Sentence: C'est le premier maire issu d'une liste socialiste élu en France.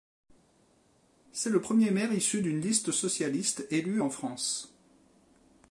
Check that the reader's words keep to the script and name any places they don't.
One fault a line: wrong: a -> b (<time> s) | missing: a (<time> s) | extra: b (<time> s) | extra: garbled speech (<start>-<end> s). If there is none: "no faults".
no faults